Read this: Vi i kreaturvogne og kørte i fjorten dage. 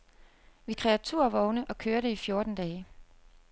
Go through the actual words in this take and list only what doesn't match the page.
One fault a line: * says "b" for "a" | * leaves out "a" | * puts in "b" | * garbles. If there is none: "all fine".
all fine